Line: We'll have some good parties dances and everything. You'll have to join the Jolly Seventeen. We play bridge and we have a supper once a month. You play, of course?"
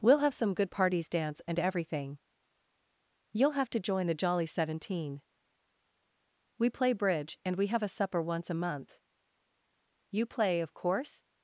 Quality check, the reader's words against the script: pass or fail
fail